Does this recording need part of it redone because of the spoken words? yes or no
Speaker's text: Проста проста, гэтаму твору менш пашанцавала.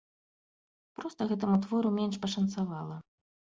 yes